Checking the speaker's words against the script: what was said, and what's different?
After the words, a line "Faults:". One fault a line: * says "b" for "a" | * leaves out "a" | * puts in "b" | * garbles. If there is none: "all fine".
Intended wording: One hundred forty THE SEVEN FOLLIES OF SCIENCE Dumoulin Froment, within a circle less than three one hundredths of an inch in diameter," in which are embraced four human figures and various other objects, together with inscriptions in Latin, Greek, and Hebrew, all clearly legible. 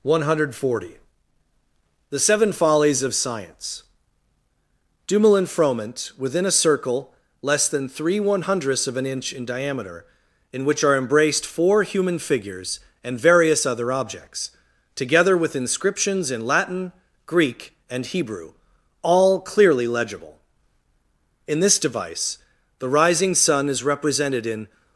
One hundred forty THE SEVEN FOLLIES OF SCIENCE Dumoulin Froment, within a circle less than three one hundredths of an inch in diameter," in which are embraced four human figures and various other objects, together with inscriptions in Latin, Greek, and Hebrew, all clearly legible. In this device the rising sun is represented in
Faults:
* puts in "In this device the rising sun is represented in"